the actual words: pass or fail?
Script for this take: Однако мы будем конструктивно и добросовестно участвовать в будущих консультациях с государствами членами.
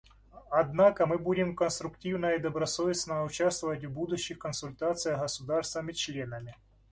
pass